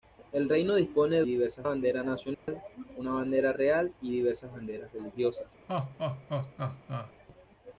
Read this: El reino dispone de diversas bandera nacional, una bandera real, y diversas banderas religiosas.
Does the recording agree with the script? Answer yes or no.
yes